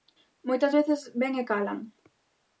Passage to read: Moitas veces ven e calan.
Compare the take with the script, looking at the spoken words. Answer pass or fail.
pass